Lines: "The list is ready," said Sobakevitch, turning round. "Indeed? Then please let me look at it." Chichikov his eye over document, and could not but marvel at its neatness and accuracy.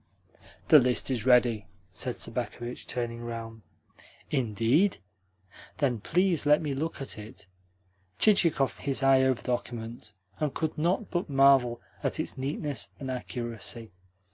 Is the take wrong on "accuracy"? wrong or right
right